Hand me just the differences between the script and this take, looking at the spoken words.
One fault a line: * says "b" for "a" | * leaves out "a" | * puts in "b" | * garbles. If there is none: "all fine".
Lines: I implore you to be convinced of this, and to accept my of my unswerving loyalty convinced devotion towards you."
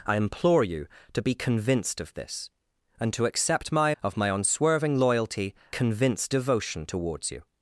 all fine